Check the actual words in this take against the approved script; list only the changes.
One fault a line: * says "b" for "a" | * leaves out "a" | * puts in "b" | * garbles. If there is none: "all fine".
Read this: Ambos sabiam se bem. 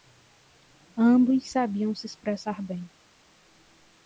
* puts in "expressar"